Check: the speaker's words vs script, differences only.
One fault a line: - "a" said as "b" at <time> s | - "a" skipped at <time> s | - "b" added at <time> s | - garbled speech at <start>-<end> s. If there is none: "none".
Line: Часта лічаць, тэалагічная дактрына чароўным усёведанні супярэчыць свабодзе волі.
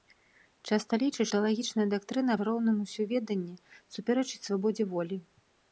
none